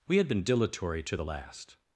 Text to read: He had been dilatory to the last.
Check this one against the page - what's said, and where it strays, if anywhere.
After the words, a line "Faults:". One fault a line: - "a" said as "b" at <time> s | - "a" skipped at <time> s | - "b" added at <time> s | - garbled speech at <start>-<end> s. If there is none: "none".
We had been dilatory to the last.
Faults:
- "He" said as "We" at 0.1 s